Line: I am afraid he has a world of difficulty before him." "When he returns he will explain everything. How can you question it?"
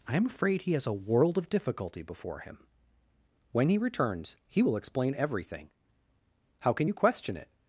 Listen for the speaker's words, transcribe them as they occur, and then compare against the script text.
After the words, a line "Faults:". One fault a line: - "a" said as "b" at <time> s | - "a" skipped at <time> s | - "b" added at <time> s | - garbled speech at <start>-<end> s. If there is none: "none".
I am afraid he has a world of difficulty before him." "When he returns he will explain everything. How can you question it?"
Faults:
none